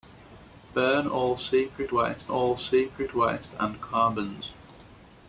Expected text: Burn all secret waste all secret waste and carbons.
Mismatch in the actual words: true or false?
false